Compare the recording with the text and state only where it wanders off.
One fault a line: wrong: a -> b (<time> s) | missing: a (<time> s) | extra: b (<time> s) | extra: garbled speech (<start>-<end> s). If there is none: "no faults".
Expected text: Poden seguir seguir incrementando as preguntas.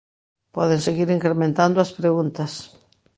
missing: seguir (1.1 s)